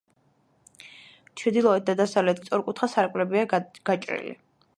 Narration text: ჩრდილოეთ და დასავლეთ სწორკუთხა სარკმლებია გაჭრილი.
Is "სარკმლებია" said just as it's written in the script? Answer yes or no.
yes